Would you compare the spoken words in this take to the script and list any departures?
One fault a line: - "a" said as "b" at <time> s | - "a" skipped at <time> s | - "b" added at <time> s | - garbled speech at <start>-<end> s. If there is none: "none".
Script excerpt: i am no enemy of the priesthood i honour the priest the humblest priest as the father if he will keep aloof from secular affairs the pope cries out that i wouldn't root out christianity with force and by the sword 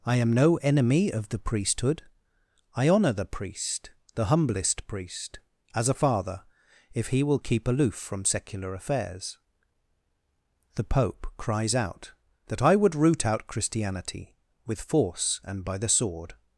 - "the" said as "a" at 5.9 s
- "wouldn't" said as "would" at 12.8 s